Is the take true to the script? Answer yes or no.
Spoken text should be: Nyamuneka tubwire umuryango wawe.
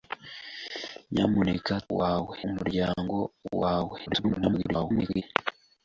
no